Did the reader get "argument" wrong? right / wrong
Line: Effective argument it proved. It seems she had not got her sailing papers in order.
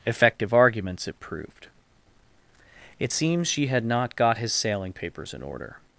wrong